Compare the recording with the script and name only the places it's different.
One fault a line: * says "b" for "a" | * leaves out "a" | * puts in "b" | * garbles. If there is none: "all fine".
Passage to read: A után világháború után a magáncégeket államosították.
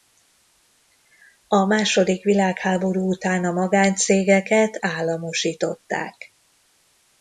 * says "második" for "után"